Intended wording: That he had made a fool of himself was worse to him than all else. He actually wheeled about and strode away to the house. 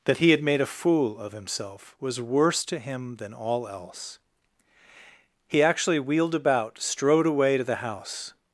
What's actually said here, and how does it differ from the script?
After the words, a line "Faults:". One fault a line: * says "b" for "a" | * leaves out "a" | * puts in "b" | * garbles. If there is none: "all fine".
That he had made a fool of himself was worse to him than all else. He actually wheeled about strode away to the house.
Faults:
* leaves out "and"